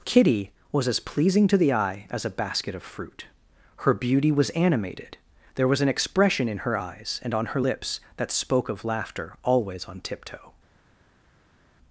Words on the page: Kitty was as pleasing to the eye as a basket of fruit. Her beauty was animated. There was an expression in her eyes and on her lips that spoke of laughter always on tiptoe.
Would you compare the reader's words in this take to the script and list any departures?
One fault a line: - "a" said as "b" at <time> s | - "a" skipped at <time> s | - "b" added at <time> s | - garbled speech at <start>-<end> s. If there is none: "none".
none